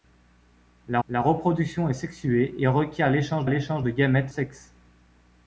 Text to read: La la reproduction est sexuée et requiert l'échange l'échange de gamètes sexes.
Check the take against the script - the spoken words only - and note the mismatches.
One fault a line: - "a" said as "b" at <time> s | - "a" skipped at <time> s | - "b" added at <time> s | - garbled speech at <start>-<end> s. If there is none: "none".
none